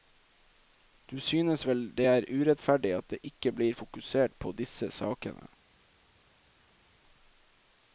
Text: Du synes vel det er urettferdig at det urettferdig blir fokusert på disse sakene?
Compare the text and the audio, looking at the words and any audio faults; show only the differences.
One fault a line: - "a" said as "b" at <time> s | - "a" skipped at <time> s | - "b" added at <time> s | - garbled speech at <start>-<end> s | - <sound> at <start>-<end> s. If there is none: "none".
- "urettferdig" said as "ikke" at 3.2 s